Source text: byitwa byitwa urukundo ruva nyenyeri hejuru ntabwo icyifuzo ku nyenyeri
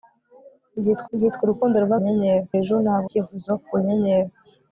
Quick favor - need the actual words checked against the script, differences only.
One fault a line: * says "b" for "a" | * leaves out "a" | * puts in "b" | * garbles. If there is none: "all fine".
all fine